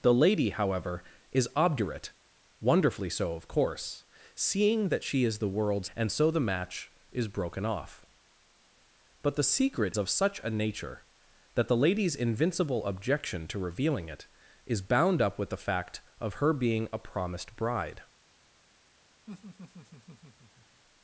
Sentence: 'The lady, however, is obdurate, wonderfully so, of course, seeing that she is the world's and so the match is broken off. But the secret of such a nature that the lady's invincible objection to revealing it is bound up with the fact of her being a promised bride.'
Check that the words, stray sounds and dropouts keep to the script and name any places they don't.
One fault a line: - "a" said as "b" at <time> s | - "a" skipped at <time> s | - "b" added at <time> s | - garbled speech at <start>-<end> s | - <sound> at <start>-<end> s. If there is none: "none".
- laugh at 19.3-20.8 s